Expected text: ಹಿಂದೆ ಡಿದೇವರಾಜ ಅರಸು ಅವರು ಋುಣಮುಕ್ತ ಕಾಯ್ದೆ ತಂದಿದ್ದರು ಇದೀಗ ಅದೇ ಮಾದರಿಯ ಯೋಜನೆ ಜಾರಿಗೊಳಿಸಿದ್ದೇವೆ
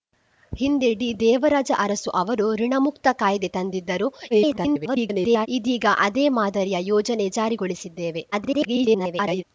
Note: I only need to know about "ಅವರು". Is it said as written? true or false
true